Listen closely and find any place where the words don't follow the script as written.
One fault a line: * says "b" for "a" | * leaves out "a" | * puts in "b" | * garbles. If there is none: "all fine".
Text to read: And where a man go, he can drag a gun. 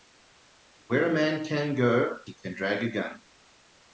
* puts in "can"